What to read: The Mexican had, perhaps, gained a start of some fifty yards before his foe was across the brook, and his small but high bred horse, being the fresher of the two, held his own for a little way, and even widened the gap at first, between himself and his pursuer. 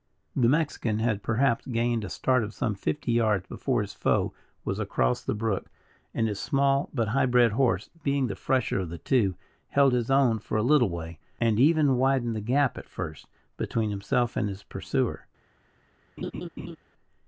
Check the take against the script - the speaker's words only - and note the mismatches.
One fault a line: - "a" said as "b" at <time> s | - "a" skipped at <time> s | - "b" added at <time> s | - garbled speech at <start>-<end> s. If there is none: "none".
none